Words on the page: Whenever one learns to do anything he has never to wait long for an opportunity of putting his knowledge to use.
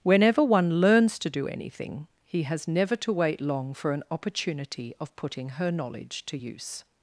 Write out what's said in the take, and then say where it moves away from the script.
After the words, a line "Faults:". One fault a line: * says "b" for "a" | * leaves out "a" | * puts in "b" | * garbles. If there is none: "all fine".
Whenever one learns to do anything he has never to wait long for an opportunity of putting her knowledge to use.
Faults:
* says "her" for "his"